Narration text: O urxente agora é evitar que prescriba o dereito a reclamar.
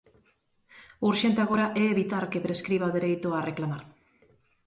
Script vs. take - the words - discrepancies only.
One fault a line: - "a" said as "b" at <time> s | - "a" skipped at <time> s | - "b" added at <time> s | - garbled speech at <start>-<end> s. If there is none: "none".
none